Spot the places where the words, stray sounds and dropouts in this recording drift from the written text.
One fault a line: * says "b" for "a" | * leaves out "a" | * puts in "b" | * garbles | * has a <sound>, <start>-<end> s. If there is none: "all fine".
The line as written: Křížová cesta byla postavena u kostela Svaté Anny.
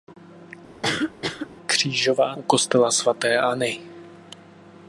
* has a cough, 0.8-1.5 s
* leaves out "cesta byla postavena"